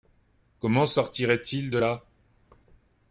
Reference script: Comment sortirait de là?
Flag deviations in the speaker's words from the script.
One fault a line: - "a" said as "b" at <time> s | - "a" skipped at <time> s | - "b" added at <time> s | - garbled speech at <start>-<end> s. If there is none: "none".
- "il" added at 1.5 s